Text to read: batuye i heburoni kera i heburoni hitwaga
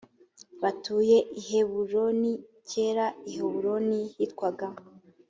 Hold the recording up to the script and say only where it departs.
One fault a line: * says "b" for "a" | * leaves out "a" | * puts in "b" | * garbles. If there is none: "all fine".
all fine